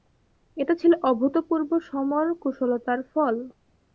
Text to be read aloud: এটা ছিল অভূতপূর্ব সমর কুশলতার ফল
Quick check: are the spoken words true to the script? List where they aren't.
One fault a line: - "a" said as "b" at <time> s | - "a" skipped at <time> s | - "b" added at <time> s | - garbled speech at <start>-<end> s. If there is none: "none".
none